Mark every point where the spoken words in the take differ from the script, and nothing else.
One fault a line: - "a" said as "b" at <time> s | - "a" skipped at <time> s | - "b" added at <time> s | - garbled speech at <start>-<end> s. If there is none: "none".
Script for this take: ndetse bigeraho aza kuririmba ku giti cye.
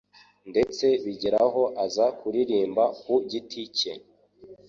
none